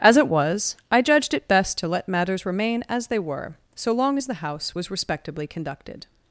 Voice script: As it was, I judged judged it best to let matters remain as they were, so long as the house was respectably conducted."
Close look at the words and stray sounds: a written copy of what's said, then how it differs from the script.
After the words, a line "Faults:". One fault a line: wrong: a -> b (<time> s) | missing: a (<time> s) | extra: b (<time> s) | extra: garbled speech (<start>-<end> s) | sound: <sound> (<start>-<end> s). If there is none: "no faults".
As it was, I judged it best to let matters remain as they were, so long as the house was respectably conducted."
Faults:
missing: judged (1.3 s)